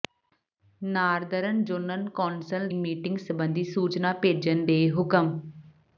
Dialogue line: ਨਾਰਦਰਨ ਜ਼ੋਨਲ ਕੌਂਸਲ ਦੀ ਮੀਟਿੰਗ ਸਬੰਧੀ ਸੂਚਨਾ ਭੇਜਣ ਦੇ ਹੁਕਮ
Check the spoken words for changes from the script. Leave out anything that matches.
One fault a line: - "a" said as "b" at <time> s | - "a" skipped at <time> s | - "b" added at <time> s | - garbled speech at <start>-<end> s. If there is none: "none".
- "ਦੀ" skipped at 2.7 s